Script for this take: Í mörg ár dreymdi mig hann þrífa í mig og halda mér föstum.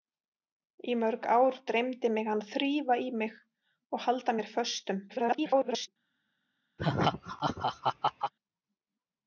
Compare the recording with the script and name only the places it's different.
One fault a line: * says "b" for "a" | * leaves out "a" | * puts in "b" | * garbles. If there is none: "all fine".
* garbles